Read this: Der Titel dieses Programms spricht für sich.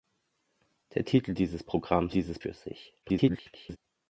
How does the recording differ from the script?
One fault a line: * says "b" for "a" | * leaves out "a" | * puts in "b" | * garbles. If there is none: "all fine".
* says "dieses" for "spricht"
* garbles